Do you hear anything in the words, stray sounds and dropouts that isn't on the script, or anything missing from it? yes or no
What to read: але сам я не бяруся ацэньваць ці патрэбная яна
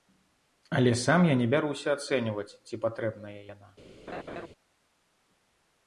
yes